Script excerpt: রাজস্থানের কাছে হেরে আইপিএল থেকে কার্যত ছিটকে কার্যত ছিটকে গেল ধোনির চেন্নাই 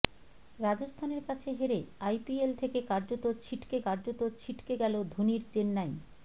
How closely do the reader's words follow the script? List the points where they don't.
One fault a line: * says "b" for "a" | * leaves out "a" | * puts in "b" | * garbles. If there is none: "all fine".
all fine